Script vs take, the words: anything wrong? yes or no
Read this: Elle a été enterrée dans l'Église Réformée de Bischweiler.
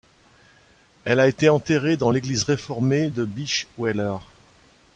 no